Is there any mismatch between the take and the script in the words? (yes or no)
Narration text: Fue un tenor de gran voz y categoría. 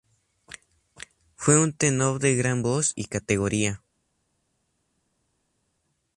no